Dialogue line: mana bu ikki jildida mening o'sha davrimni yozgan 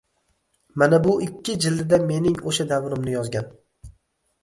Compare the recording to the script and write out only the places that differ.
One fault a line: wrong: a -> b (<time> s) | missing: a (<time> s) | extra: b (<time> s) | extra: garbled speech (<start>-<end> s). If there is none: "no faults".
no faults